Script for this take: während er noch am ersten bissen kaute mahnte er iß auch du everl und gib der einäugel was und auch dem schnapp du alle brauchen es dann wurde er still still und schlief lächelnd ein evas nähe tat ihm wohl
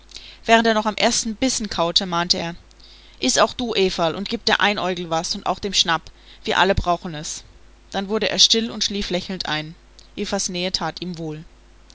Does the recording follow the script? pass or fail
fail